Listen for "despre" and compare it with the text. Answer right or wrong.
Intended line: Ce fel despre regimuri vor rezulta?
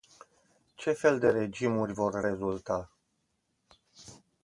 wrong